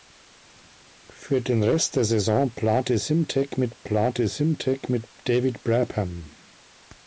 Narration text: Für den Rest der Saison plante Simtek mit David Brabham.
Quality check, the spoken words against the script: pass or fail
fail